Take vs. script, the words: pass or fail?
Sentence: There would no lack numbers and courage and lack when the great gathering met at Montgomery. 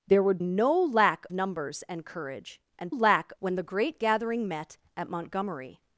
pass